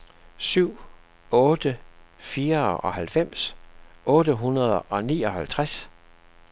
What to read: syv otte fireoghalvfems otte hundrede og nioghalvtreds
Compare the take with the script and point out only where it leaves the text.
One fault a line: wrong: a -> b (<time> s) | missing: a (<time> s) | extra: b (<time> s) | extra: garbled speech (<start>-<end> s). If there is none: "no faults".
no faults